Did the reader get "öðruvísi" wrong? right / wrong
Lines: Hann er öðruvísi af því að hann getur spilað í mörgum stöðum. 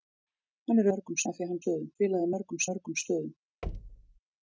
wrong